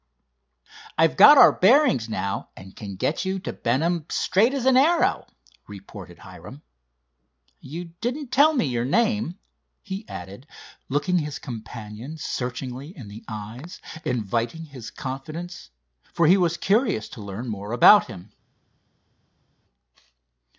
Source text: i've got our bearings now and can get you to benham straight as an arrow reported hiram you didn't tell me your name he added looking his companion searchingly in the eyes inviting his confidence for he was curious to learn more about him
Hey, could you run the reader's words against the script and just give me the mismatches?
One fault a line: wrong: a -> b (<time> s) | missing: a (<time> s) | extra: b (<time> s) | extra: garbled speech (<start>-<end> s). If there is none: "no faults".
no faults